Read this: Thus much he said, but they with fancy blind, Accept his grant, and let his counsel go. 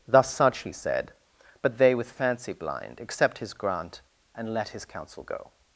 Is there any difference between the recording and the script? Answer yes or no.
yes